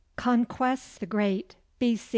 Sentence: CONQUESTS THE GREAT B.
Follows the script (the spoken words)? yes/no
yes